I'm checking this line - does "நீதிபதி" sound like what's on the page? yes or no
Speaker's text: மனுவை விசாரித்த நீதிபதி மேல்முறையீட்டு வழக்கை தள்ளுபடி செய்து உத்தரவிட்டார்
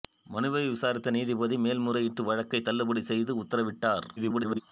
yes